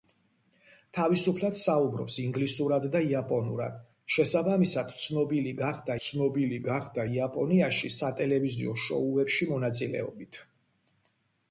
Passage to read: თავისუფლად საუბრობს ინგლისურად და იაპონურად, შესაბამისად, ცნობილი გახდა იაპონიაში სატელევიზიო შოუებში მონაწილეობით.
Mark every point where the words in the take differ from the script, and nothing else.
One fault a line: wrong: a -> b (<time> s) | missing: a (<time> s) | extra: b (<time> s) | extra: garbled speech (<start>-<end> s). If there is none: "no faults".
extra: ცნობილი გახდა (6.0 s)